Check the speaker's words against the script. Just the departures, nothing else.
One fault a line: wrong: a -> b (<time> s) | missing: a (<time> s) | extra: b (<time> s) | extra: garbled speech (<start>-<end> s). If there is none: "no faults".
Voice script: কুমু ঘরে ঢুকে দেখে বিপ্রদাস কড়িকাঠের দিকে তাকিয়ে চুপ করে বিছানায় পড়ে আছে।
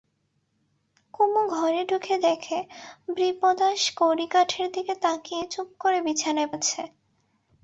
missing: পড়ে (6.5 s)